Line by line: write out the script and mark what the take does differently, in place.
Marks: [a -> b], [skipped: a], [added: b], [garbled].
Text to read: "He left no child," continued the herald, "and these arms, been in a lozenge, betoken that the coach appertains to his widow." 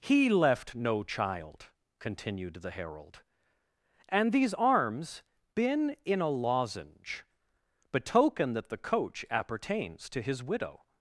"He left no child," continued the herald, "and these arms, been in a lozenge, betoken that the coach appertains to his widow."